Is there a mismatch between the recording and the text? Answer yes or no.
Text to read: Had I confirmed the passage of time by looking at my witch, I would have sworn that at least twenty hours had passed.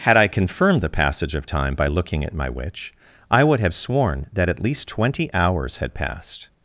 no